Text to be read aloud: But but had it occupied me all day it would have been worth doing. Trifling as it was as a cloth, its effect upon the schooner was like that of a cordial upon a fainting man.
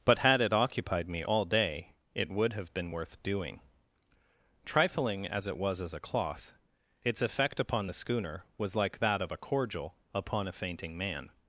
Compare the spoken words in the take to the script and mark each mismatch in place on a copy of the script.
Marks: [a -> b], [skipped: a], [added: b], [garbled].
But [skipped: but] had it occupied me all day it would have been worth doing. Trifling as it was as a cloth, its effect upon the schooner was like that of a cordial upon a fainting man.